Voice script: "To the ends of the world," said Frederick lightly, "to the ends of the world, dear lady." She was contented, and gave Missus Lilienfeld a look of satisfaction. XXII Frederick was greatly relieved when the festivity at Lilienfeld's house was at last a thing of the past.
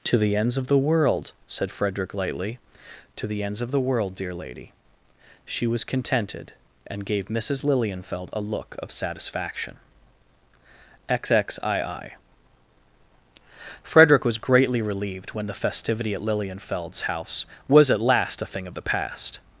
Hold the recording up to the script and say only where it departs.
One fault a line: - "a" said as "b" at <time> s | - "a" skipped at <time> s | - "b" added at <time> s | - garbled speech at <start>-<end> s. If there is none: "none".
none